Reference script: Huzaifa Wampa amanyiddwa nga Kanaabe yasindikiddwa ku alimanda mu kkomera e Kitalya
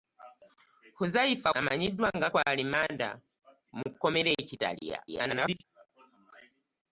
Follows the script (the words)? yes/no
no